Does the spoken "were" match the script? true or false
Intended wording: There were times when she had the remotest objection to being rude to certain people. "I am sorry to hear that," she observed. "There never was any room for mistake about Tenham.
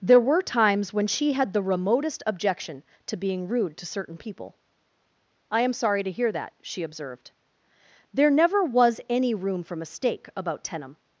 true